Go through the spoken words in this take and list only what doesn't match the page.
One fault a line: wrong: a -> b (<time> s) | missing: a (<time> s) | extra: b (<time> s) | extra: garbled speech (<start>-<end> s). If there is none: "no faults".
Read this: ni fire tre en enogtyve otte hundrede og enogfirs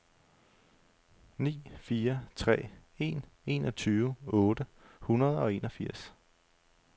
no faults